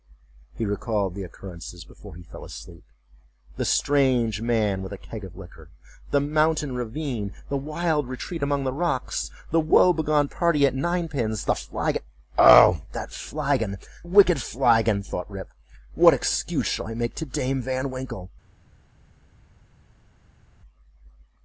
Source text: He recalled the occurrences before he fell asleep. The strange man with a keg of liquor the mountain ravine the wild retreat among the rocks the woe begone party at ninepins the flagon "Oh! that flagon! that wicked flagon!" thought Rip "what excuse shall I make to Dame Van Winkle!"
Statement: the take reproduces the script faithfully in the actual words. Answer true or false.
false